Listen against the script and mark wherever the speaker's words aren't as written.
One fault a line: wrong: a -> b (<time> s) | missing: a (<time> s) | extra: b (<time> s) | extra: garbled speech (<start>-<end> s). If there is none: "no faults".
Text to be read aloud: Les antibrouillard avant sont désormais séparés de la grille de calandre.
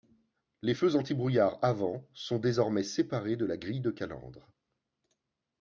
extra: feux (0.7 s)